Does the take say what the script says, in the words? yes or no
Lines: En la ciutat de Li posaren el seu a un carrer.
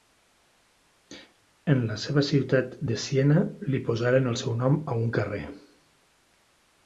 no